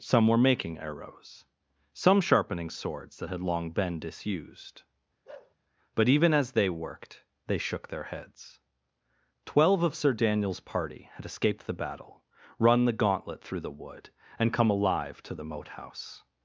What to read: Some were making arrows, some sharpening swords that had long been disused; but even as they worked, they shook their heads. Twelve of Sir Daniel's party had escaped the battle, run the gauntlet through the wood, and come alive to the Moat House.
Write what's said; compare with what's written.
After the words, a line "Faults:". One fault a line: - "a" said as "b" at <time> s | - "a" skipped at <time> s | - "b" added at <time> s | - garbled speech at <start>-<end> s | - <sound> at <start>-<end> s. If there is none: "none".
Some were making arrows, some sharpening swords that had long been disused; but even as they worked, they shook their heads. Twelve of Sir Daniel's party had escaped the battle, run the gauntlet through the wood, and come alive to the Moat House.
Faults:
- bark at 5.3-5.6 s